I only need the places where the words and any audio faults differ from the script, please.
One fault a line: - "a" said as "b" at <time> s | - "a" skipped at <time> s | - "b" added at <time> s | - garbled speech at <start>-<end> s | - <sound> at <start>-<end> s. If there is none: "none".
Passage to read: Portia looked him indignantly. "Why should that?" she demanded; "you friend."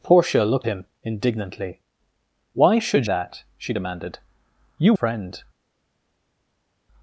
none